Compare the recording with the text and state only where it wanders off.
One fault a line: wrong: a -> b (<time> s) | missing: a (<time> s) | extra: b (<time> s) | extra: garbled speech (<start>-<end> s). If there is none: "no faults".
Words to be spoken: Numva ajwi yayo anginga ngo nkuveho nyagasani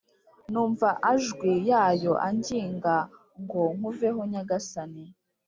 no faults